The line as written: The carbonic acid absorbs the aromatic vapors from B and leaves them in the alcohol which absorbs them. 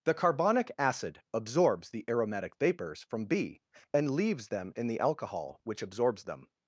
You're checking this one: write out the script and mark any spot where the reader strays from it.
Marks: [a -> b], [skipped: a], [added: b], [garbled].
The carbonic acid absorbs the aromatic vapors from B and leaves them in the alcohol which absorbs them.